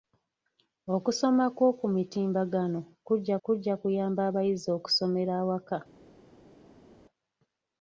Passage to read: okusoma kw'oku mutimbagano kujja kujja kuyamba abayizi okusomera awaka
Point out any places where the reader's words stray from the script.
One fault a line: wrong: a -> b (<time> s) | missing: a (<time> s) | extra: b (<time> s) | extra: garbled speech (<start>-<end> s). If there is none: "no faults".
no faults